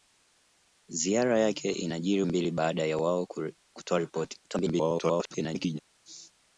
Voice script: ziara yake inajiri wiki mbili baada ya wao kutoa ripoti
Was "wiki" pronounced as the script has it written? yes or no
no